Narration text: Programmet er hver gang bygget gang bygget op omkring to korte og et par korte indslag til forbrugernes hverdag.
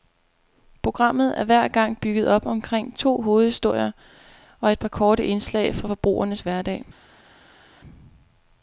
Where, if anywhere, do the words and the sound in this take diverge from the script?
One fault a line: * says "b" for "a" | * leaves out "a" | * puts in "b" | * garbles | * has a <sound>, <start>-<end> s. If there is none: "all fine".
* leaves out "gang bygget"
* says "hovedhistorier" for "korte"
* says "fra" for "til"